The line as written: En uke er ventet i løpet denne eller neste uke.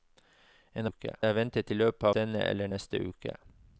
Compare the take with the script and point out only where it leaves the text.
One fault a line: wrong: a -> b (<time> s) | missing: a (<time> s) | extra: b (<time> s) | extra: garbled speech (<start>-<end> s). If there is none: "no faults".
no faults